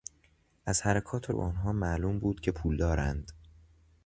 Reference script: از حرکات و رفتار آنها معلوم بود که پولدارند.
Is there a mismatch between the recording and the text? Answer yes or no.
yes